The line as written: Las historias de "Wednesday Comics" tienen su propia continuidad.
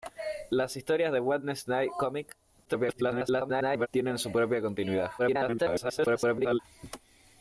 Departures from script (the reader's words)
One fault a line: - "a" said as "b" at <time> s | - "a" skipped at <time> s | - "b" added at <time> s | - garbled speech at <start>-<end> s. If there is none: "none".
- garbled speech at 2.6-3.9 s
- garbled speech at 5.2-6.6 s